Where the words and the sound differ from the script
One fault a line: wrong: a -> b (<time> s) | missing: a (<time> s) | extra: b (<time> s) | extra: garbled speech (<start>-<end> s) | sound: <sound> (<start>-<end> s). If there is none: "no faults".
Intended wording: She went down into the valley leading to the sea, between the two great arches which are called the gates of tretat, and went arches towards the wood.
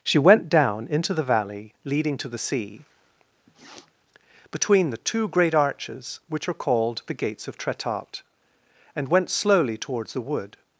sound: sniff (3.5-3.9 s)
wrong: arches -> slowly (9.3 s)